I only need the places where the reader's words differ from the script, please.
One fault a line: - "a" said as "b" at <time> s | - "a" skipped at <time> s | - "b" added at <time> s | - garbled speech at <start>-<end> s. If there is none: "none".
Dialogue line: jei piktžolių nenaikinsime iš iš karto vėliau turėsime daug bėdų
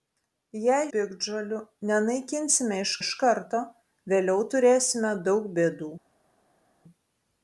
none